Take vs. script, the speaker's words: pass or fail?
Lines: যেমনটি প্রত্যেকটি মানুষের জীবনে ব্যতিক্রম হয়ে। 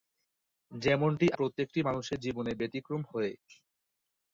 pass